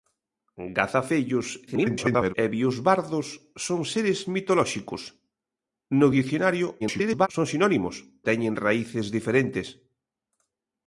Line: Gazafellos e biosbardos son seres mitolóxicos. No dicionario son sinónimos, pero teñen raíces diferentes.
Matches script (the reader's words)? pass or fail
fail